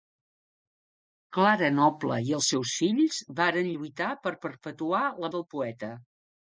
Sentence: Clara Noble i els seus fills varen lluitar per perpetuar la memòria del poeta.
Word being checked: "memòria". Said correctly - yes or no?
no